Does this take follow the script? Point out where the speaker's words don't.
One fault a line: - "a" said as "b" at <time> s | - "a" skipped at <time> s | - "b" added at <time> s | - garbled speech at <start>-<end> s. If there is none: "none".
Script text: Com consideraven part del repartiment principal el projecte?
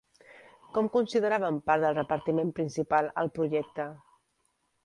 none